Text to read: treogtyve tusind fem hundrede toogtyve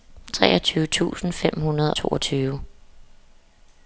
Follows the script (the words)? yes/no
yes